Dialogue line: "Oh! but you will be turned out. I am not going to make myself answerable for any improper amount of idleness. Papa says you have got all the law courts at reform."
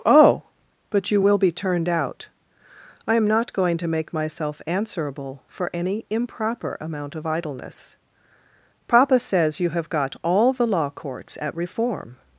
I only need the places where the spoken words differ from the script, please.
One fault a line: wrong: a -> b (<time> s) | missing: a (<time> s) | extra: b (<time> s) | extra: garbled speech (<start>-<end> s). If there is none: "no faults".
no faults